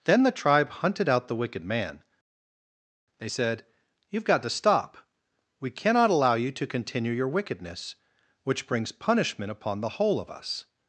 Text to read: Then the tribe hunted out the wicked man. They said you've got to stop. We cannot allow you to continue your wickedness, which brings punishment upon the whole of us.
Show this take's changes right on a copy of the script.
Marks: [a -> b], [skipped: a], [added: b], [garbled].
Then the tribe hunted out the wicked man. They said you've got to stop. We cannot allow you to continue your wickedness, which brings punishment upon the whole of us.